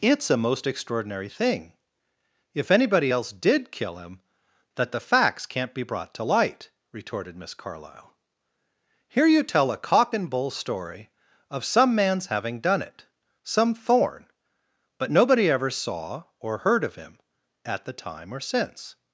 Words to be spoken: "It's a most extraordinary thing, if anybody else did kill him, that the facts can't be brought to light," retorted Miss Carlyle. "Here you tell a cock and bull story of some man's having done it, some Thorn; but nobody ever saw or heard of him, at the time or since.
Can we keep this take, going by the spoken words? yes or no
yes